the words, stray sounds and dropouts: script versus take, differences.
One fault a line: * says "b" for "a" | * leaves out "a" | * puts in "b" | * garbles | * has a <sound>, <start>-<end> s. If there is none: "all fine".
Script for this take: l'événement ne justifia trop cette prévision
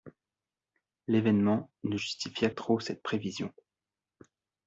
all fine